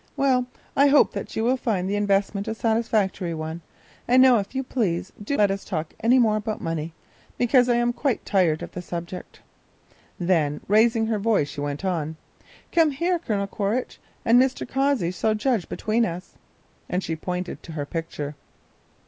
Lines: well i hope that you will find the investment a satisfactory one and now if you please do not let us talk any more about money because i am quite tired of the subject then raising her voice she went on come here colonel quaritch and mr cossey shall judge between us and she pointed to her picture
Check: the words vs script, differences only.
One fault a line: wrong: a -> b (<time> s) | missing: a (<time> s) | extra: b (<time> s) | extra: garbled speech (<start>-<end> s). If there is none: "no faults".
missing: not (5.4 s)